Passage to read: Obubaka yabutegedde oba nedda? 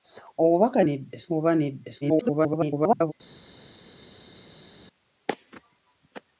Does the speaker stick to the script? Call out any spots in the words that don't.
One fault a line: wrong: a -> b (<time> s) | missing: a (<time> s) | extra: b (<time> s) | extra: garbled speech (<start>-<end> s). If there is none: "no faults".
wrong: yabutegedde -> nedda (0.9 s)
extra: garbled speech (2.0-3.1 s)